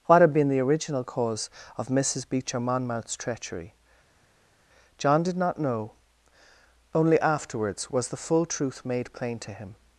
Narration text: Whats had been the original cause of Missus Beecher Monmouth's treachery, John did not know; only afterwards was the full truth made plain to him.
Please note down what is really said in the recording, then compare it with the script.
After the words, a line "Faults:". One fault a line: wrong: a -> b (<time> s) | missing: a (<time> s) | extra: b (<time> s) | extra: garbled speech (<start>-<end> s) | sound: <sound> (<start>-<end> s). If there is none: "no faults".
What had been the original cause of Missus Beecher Monmouth's treachery, John did not know; only afterwards was the full truth made plain to him.
Faults:
wrong: Whats -> What (0.1 s)